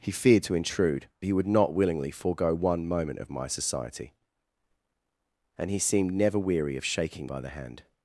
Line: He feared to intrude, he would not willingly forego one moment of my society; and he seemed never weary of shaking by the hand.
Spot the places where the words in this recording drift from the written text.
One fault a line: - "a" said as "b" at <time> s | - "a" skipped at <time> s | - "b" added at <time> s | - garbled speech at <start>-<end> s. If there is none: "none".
none